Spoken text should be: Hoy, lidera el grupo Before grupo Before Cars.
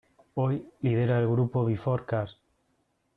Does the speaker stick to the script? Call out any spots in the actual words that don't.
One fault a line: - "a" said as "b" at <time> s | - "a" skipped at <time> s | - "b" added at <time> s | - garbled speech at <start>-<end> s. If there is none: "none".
- "grupo Before" skipped at 2.0 s